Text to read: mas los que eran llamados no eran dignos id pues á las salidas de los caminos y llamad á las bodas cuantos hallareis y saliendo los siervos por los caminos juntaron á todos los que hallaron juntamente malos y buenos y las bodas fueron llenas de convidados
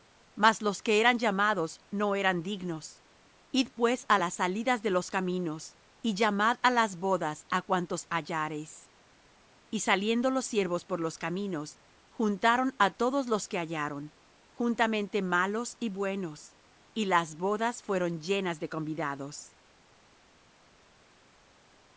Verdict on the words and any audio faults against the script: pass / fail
fail